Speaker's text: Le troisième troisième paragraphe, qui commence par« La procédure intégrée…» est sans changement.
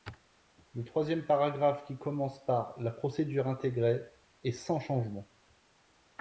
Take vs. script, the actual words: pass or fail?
fail